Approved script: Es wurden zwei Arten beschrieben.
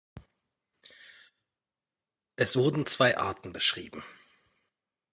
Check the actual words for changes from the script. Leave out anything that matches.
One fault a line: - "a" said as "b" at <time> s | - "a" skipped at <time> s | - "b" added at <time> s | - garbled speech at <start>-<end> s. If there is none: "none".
none